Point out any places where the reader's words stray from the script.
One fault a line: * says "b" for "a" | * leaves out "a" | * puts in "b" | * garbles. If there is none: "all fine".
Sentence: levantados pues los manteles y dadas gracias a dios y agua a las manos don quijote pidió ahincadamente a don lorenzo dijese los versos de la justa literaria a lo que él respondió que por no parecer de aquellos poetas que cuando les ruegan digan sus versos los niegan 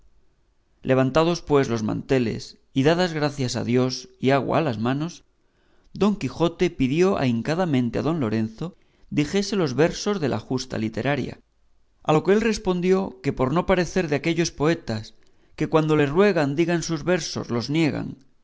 all fine